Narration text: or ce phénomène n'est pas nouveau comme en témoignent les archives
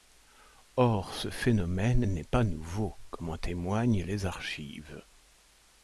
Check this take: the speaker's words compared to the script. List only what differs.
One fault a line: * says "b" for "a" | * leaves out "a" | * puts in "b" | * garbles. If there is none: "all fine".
all fine